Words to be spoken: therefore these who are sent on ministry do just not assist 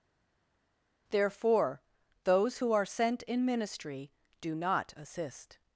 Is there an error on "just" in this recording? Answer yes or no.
yes